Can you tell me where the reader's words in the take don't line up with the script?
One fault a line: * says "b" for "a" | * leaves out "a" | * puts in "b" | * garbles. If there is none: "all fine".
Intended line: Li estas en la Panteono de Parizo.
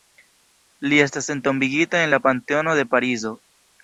* puts in "entombigita"